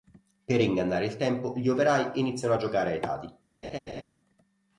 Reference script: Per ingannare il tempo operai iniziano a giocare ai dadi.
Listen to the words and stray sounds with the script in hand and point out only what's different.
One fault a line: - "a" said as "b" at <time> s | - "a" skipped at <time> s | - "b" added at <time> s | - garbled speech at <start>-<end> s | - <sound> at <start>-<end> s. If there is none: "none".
- "gli" added at 1.6 s
- laugh at 3.6-4.0 s